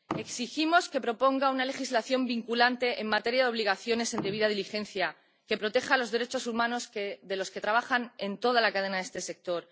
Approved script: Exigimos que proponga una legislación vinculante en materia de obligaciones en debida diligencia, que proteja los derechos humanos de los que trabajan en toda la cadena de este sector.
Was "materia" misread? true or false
false